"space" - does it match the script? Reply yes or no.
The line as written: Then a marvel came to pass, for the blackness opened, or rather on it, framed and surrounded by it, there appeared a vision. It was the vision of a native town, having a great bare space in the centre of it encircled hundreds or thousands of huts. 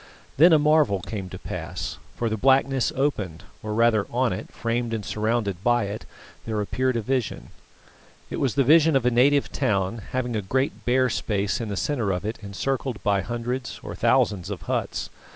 yes